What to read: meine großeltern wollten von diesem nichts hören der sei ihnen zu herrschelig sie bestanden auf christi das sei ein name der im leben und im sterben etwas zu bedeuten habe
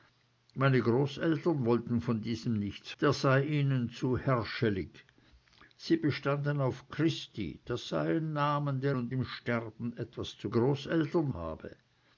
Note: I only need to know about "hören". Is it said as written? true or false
false